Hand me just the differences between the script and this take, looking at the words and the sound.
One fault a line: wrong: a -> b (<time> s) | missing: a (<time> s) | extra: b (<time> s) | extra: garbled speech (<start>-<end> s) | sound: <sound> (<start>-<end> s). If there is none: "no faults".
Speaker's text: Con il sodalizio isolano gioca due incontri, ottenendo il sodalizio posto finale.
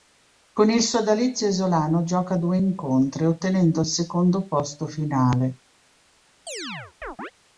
wrong: sodalizio -> secondo (3.9 s)
sound: chirp (6.5-7.3 s)